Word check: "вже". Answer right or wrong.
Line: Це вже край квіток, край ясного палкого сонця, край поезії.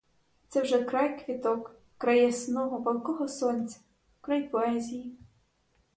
right